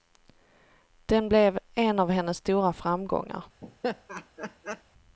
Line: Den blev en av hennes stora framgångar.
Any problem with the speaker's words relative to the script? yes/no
no